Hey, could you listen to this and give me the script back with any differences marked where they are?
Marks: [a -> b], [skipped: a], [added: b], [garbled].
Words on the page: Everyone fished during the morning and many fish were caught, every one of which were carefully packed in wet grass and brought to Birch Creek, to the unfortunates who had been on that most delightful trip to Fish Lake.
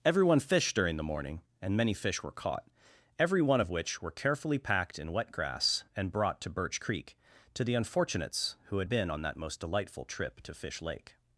Everyone fished during the morning and many fish were caught, every one of which were carefully packed in wet grass and brought to Birch Creek, to the unfortunates who had been on that most delightful trip to Fish Lake.